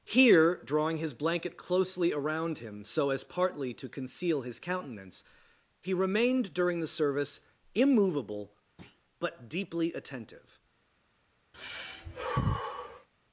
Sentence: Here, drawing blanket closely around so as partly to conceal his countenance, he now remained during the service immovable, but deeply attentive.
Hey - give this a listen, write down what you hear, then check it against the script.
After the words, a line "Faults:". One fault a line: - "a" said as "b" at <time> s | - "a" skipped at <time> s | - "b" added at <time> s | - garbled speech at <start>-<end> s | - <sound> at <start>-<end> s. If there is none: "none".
Here, drawing his blanket closely around him so as partly to conceal his countenance, he remained during the service immovable, but deeply attentive.
Faults:
- "his" added at 1.0 s
- "him" added at 2.6 s
- "now" skipped at 5.9 s
- thud at 8.8-9.0 s
- sigh at 11.5-13.1 s